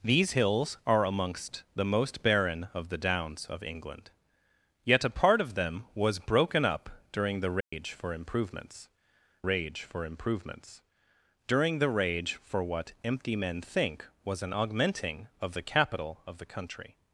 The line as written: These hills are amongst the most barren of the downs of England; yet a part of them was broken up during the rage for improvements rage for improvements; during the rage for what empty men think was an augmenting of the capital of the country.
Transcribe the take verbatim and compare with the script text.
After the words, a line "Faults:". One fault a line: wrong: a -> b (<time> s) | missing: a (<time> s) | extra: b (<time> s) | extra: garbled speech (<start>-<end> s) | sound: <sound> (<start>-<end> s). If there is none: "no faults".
These hills are amongst the most barren of the downs of England; yet a part of them was broken up during the rage for improvements rage for improvements; during the rage for what empty men think was an augmenting of the capital of the country.
Faults:
sound: dropout (7.6-7.7 s)